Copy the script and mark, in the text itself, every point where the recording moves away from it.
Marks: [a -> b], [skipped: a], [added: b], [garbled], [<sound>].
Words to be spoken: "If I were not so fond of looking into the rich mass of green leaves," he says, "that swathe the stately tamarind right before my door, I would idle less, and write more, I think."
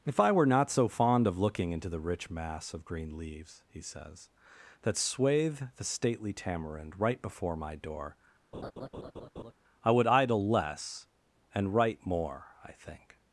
"If I were not so fond of looking into the rich mass of green leaves," he says, "that swathe the stately tamarind right before my door, [laugh] I would idle less, and write more, I think."